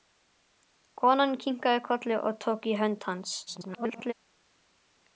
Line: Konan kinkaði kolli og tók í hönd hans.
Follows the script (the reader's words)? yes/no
no